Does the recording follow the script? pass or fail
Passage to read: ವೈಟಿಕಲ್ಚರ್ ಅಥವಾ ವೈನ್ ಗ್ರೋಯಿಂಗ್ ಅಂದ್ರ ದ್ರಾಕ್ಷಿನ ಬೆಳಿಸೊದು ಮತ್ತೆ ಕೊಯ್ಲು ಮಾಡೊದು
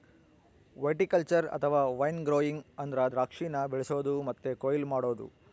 pass